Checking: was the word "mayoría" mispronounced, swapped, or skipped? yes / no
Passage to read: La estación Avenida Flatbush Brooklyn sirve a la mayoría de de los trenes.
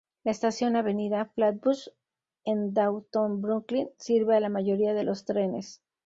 no